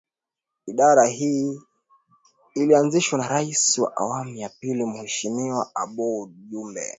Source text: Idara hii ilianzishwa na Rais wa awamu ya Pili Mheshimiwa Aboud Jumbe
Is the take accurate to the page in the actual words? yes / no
yes